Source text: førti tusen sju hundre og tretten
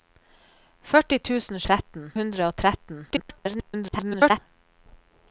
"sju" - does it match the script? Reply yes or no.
no